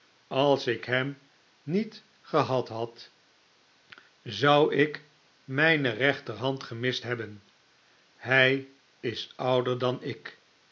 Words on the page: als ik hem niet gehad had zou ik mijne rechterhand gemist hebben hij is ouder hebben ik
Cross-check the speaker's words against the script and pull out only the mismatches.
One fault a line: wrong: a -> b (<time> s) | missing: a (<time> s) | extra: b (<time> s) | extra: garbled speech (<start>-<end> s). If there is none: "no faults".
wrong: hebben -> dan (9.8 s)